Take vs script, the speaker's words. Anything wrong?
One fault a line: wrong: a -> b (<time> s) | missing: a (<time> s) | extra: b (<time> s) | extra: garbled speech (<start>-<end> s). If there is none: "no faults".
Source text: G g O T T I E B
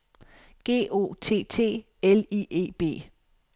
missing: g (0.9 s)
extra: L (2.0 s)